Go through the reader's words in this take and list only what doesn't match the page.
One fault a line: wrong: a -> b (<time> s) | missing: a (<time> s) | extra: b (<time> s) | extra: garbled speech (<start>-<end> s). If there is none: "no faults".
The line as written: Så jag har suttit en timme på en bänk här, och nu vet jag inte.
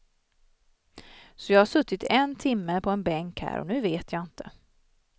no faults